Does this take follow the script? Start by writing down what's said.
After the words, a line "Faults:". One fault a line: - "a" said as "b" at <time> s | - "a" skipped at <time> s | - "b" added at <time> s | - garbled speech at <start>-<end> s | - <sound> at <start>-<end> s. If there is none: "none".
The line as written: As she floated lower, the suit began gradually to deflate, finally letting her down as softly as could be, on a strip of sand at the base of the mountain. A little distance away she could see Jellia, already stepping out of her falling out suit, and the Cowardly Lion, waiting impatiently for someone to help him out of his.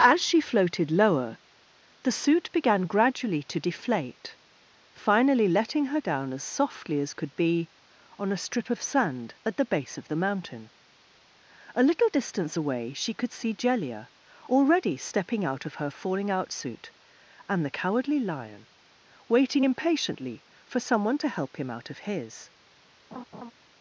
As she floated lower, the suit began gradually to deflate, finally letting her down as softly as could be, on a strip of sand at the base of the mountain. A little distance away she could see Jellia, already stepping out of her falling out suit, and the Cowardly Lion, waiting impatiently for someone to help him out of his.
Faults:
- laugh at 23.1-23.5 s